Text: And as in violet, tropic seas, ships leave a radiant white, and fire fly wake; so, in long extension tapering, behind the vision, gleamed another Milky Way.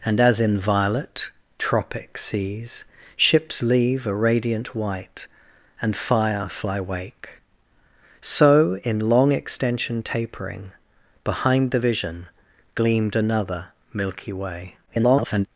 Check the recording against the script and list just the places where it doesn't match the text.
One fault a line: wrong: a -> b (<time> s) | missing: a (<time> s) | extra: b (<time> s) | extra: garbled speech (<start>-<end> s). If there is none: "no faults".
extra: garbled speech (14.9-15.5 s)